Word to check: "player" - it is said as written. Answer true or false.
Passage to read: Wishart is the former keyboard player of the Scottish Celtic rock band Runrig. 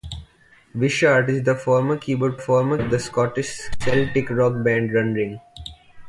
false